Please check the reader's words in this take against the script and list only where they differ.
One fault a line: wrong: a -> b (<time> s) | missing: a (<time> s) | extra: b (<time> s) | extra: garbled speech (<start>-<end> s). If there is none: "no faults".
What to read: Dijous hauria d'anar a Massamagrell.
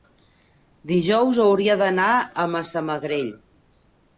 no faults